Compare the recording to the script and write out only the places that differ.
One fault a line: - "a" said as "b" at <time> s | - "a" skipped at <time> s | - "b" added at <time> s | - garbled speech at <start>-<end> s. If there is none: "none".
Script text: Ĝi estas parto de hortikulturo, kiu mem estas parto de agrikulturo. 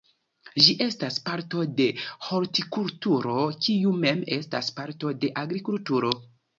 none